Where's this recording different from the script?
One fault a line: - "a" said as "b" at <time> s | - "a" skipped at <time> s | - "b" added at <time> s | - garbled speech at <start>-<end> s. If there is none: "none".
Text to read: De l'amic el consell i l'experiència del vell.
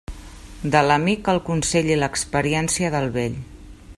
none